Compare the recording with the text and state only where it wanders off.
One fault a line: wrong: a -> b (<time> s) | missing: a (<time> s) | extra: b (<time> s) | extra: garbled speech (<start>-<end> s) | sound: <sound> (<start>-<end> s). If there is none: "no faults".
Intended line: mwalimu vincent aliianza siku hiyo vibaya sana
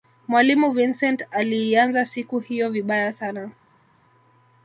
no faults